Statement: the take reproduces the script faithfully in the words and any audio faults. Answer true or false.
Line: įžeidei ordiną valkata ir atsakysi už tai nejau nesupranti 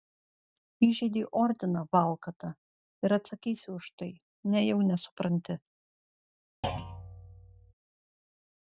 false